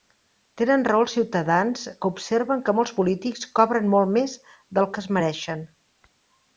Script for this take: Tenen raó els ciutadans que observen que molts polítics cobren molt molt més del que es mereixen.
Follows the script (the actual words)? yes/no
no